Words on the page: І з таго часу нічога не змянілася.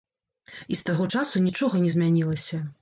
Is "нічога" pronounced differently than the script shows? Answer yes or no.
no